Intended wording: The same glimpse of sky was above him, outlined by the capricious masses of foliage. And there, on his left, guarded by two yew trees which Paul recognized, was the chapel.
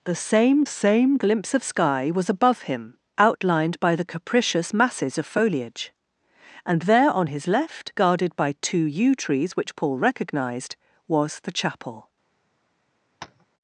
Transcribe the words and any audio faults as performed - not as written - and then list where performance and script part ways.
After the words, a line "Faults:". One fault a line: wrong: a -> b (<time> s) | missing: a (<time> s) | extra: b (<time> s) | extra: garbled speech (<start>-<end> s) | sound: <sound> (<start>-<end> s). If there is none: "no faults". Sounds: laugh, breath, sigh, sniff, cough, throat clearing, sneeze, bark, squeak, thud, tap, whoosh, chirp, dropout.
The same same glimpse of sky was above him, outlined by the capricious masses of foliage. And there, on his left, guarded by two yew trees which Paul recognized, was the chapel.
Faults:
extra: same (0.6 s)
sound: tap (13.2-13.5 s)